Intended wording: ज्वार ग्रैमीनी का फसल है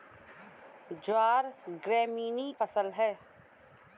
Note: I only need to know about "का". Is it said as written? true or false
false